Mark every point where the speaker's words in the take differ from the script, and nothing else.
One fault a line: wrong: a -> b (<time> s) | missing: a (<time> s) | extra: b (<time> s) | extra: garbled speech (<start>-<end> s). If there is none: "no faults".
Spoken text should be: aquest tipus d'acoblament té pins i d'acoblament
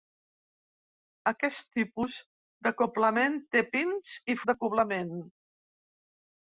no faults